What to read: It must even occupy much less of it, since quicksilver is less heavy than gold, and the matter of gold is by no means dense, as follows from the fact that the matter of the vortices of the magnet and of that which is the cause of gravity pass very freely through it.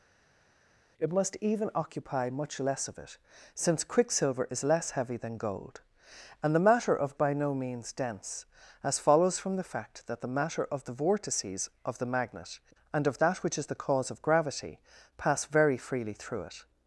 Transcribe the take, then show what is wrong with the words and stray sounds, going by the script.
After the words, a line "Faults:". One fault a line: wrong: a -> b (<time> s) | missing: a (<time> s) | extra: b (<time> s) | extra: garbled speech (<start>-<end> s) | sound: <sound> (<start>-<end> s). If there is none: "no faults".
It must even occupy much less of it, since quicksilver is less heavy than gold, and the matter of by no means dense, as follows from the fact that the matter of the vortices of the magnet and of that which is the cause of gravity pass very freely through it.
Faults:
missing: gold is (7.2 s)